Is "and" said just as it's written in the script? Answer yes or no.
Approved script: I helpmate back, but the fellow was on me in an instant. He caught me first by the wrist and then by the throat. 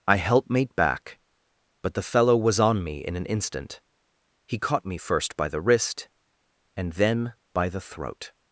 yes